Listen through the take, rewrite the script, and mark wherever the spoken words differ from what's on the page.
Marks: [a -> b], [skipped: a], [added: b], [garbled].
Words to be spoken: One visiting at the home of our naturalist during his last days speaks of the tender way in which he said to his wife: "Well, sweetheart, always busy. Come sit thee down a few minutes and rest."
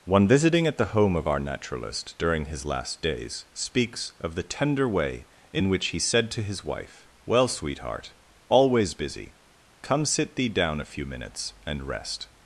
One visiting at the home of our naturalist during his last days speaks of the tender way in which he said to his wife: "Well, sweetheart, always busy. Come sit thee down a few minutes and rest."